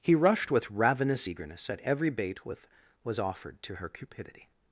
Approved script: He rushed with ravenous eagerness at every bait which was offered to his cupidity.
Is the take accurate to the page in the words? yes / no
no